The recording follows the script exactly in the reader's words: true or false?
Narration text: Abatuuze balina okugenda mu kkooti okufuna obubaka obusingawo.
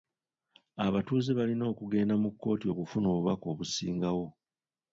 true